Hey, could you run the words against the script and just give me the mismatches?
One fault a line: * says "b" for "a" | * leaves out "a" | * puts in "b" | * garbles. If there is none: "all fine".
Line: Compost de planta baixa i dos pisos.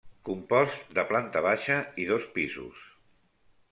all fine